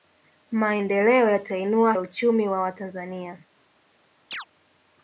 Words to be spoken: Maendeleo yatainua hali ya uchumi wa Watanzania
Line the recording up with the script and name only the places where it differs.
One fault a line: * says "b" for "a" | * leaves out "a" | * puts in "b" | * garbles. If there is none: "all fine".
* leaves out "hali"